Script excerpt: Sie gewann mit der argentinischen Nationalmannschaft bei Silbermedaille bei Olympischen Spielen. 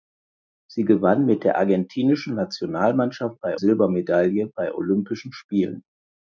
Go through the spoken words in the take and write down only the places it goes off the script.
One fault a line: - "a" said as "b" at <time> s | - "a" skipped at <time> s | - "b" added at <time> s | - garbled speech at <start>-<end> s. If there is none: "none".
none